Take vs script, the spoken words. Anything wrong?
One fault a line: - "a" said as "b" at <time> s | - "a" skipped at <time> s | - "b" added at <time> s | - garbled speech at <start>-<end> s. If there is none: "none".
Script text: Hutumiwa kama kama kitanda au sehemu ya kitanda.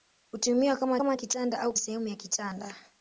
none